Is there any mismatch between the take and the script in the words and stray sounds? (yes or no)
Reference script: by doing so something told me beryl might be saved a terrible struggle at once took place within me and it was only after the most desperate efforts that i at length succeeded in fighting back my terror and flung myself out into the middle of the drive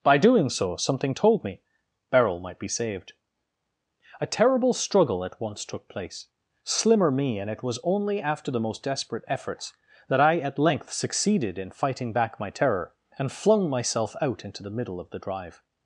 yes